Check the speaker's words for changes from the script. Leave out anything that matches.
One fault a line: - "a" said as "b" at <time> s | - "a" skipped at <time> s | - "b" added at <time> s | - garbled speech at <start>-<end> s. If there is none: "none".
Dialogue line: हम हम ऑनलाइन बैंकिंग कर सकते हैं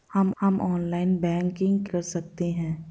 none